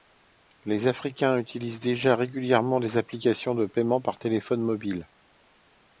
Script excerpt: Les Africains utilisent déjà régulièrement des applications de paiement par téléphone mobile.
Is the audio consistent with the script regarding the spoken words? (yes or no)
yes